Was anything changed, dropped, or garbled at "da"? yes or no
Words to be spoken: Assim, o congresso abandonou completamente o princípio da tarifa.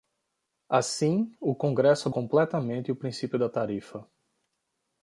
no